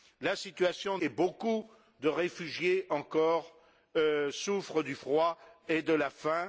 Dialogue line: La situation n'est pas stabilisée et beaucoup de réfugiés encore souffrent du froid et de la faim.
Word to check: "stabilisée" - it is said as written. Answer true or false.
false